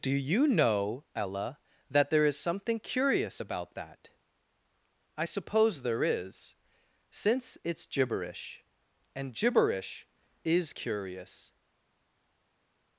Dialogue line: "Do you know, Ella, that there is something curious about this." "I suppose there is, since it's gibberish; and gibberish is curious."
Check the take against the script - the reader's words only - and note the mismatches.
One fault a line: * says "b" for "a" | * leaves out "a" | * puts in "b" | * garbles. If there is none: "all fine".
* says "that" for "this"